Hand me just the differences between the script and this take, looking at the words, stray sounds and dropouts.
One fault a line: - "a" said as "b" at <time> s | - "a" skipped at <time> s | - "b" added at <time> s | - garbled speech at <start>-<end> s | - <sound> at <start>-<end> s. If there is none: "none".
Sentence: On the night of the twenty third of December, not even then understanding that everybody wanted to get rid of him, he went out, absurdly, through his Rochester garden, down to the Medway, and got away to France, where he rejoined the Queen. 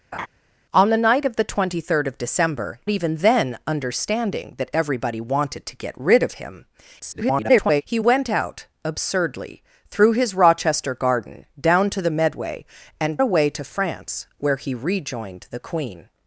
- laugh at 0.1-0.3 s
- "not" skipped at 2.8 s
- garbled speech at 7.0-7.8 s
- "got" skipped at 13.2 s